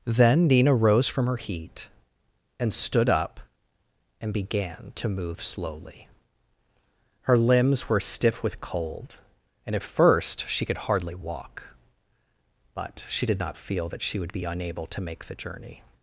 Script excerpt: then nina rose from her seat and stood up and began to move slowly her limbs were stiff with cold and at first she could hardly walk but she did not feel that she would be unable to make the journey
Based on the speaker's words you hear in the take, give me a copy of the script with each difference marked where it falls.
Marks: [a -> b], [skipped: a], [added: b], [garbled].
then nina rose from her [seat -> heat] and stood up and began to move slowly her limbs were stiff with cold and at first she could hardly walk but she did not feel that she would be unable to make the journey